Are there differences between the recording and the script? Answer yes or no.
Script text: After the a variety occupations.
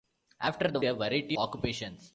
no